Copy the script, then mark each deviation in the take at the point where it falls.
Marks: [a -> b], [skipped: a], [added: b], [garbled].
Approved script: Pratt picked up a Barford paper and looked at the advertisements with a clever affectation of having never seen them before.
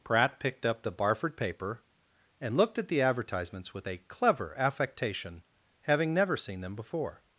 Pratt picked up [a -> the] Barford paper and looked at the advertisements with a clever affectation [skipped: of] having never seen them before.